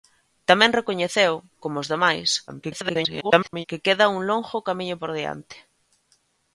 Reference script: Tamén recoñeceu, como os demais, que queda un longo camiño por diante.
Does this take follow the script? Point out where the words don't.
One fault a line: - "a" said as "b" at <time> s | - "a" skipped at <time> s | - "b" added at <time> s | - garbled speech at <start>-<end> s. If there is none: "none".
- garbled speech at 2.5-3.7 s